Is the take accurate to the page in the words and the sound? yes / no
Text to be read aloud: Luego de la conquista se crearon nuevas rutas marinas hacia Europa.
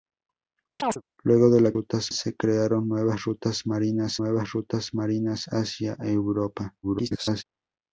no